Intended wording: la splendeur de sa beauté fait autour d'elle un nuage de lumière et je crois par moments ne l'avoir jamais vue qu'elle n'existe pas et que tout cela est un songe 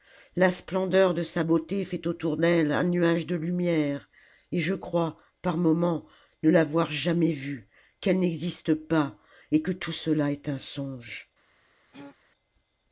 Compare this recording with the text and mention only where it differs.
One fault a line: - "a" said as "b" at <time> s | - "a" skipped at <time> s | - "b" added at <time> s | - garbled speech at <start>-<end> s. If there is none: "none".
none